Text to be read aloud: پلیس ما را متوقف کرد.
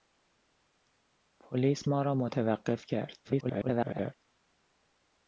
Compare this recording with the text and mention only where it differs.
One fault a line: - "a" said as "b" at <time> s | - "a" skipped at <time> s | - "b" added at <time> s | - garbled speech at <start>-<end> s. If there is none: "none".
- garbled speech at 3.2-4.1 s